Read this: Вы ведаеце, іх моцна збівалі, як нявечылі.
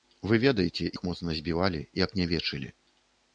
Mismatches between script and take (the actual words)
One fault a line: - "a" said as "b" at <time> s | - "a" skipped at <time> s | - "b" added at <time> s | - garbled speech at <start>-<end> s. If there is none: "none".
none